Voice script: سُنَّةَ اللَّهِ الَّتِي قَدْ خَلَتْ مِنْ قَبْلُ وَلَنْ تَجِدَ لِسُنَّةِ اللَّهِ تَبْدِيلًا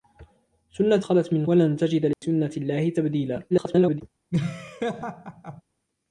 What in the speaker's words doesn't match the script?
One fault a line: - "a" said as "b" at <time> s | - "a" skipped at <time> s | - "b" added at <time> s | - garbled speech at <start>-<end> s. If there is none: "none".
- "اللَّهِ الَّتِي قَدْ" skipped at 1.0 s
- "قَبْلُ" skipped at 1.5 s
- garbled speech at 3.5-4.0 s